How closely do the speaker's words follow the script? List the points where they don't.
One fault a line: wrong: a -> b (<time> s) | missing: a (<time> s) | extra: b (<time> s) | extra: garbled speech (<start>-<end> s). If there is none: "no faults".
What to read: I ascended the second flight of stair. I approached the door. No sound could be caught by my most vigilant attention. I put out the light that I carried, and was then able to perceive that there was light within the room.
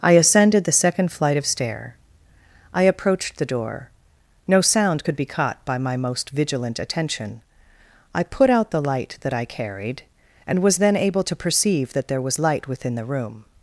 no faults